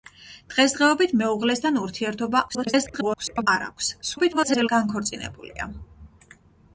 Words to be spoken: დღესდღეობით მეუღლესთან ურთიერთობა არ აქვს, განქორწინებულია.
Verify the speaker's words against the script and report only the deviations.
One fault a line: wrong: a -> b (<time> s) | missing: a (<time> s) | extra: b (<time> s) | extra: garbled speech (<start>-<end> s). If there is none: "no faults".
extra: garbled speech (2.5-3.5 s)
extra: garbled speech (4.0-4.7 s)